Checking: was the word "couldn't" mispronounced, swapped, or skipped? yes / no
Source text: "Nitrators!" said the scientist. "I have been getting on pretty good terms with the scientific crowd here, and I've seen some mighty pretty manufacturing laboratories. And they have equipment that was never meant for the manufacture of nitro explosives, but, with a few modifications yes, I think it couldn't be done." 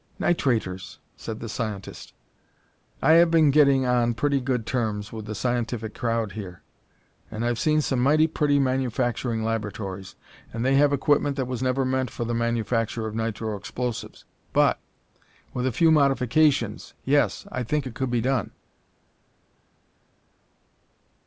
yes